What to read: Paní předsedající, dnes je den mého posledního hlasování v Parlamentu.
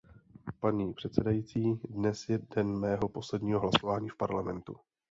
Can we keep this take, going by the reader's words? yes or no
yes